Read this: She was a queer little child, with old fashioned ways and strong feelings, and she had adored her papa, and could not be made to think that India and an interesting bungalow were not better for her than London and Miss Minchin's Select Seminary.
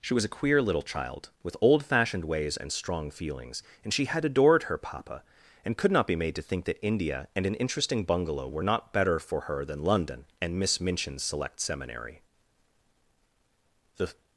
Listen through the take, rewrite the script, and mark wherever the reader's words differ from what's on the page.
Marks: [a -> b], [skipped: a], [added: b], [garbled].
She was a queer little child, with old fashioned ways and strong feelings, and she had adored her papa, and could not be made to think that India and an interesting bungalow were not better for her than London and Miss Minchin's Select Seminary. [added: The]